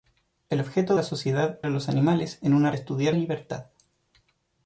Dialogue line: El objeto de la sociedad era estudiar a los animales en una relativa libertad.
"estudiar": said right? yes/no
no